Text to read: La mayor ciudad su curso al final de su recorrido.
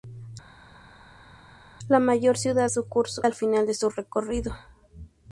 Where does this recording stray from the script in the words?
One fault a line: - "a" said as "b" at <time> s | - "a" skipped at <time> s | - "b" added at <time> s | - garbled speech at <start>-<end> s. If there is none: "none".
none